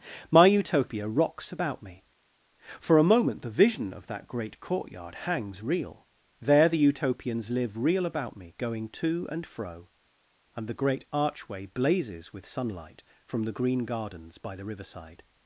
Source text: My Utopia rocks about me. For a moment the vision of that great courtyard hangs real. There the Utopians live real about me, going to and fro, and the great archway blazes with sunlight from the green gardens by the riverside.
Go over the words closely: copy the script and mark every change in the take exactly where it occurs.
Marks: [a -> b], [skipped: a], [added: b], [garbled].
My Utopia rocks about me. For a moment the vision of that great courtyard hangs real. There the Utopians live real about me, going to and fro, and the great archway blazes with sunlight from the green gardens by the riverside.